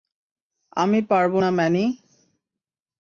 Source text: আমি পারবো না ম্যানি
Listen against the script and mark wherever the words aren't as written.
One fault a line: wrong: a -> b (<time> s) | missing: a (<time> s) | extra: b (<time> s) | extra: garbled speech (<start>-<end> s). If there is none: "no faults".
no faults